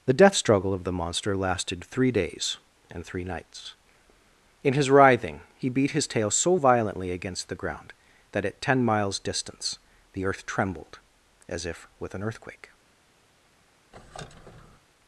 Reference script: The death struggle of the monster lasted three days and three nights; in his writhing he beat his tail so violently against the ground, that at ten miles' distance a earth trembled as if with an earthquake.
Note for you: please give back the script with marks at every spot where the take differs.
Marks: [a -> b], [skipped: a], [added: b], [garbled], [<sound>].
The death struggle of the monster lasted three days and three nights; in his writhing he beat his tail so violently against the ground, that at ten miles' distance [a -> the] earth trembled as if with an earthquake. [squeak]